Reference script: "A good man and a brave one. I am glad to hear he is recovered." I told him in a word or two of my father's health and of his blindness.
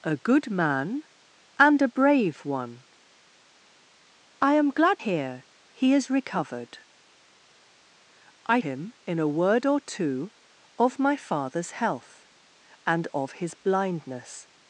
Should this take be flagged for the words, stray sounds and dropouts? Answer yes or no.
yes